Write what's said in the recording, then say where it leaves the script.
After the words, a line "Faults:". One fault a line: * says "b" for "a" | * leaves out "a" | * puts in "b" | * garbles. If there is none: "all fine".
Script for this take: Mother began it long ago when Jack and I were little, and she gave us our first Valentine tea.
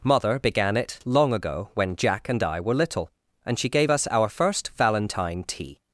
Mother began it long ago when Jack and I were little, and she gave us our first Valentine tea.
Faults:
all fine